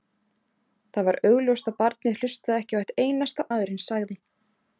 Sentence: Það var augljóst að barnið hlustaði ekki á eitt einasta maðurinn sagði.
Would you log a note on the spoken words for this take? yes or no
no